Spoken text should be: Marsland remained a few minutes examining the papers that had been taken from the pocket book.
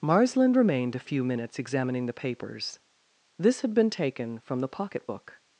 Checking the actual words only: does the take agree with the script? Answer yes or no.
no